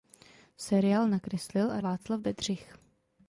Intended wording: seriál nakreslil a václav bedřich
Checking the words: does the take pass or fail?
pass